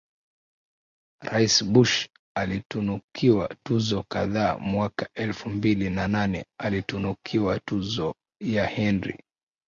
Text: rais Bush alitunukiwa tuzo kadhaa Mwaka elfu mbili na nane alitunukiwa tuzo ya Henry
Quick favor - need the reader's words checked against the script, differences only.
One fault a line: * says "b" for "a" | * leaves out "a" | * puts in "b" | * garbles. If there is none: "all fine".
all fine